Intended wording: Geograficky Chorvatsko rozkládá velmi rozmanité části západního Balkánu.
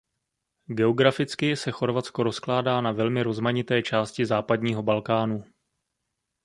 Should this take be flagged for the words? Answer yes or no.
yes